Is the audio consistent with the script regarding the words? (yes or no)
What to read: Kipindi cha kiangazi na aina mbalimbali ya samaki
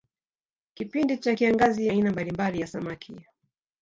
no